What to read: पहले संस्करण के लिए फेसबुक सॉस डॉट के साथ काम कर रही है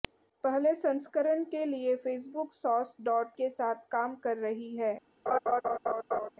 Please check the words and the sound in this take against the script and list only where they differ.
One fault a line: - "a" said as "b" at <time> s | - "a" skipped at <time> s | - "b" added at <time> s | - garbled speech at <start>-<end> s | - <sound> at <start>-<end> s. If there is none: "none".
- laugh at 5.3-6.3 s